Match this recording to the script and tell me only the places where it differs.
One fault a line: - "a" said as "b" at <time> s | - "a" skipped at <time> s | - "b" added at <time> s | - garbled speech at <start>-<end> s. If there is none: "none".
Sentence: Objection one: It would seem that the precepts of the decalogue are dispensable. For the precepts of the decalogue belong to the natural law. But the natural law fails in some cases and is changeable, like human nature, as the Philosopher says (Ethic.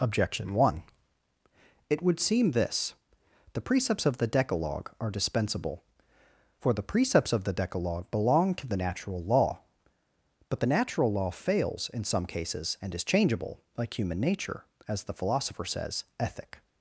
- "that" said as "this" at 2.5 s